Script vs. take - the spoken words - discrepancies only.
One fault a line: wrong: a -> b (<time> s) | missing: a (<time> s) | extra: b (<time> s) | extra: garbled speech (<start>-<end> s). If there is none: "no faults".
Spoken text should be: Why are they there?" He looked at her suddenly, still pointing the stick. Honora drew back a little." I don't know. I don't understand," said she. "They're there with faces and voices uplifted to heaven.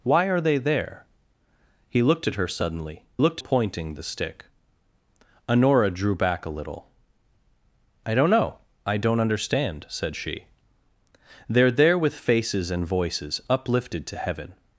wrong: still -> looked (3.2 s)